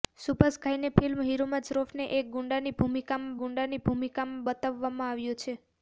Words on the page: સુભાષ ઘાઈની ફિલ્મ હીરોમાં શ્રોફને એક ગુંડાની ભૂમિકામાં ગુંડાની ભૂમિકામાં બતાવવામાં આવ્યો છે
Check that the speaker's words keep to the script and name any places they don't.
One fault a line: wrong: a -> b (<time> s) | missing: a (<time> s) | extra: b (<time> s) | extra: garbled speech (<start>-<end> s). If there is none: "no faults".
no faults